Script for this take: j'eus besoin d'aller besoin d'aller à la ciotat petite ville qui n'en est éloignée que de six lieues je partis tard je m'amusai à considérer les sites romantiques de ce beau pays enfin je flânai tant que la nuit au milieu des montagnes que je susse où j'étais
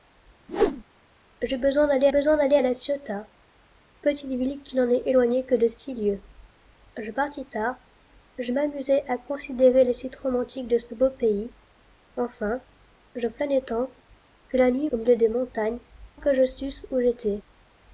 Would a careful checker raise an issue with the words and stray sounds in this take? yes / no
yes